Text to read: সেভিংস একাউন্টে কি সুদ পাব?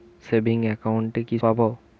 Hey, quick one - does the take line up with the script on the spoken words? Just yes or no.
no